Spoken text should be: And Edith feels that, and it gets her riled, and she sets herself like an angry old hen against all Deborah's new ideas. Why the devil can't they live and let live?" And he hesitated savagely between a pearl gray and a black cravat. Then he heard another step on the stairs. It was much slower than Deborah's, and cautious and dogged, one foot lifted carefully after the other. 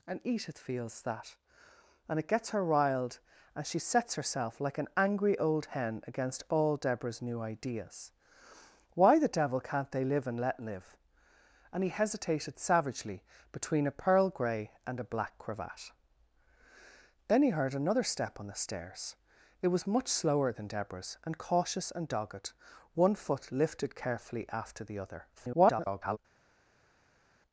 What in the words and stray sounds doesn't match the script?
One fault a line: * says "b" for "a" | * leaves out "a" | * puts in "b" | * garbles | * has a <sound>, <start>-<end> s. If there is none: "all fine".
* garbles